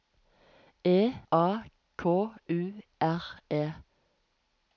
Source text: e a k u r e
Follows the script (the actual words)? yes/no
yes